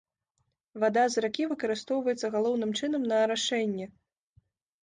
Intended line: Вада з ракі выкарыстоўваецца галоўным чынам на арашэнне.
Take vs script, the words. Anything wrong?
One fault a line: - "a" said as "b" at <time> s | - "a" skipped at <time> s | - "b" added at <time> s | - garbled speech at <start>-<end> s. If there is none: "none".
none